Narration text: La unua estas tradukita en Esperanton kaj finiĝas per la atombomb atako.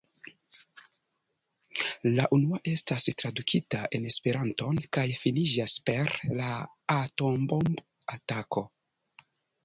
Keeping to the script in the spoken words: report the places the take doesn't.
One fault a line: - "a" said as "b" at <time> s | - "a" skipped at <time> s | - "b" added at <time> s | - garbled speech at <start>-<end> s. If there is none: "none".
none